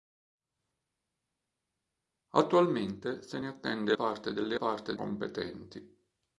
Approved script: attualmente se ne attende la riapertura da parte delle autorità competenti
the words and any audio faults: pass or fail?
fail